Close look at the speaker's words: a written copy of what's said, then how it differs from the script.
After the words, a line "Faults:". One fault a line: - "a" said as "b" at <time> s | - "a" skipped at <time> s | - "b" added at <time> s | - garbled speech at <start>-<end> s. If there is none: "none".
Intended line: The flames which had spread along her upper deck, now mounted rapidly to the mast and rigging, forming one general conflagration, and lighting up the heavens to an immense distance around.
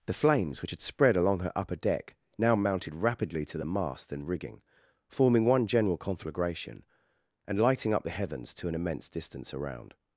The flames which had spread along her upper deck, now mounted rapidly to the mast and rigging, forming one general conflagration, and lighting up the heavens to an immense distance around.
Faults:
none